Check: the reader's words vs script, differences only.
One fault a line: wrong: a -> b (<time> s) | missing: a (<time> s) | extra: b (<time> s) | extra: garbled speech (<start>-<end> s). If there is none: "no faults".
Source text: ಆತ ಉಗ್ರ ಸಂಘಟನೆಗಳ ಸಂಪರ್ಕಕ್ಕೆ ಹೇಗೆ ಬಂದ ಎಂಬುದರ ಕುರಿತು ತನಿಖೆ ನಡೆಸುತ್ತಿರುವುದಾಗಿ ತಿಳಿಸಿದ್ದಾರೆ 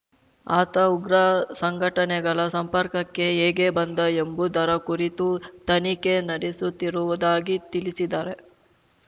no faults